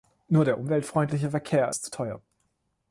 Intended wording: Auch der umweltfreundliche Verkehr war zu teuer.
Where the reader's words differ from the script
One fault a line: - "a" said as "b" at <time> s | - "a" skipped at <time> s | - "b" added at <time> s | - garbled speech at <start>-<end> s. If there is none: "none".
- "Auch" said as "Nur" at 0.3 s
- "war" said as "ist" at 1.7 s